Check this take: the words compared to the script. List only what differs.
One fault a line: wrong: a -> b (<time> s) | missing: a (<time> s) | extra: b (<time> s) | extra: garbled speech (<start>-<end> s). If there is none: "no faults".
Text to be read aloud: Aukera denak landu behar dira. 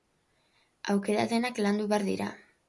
no faults